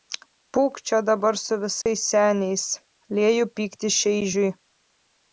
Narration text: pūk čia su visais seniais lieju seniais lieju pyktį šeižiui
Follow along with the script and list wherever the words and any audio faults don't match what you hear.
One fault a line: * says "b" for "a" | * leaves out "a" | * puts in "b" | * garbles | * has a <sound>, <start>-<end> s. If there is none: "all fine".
* puts in "dabar"
* has a dropout, 1.8-1.9 s
* leaves out "seniais lieju"